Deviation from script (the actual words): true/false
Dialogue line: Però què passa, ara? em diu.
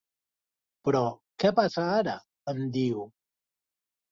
false